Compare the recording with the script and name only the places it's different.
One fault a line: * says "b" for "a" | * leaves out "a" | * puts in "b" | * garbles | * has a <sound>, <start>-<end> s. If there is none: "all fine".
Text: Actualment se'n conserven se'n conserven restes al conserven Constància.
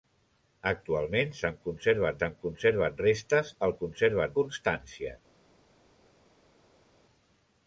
all fine